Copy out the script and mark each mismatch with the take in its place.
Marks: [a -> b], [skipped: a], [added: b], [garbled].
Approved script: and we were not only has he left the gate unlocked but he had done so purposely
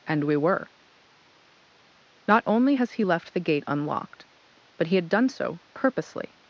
and we were not only has he left the gate unlocked but he had done so purposely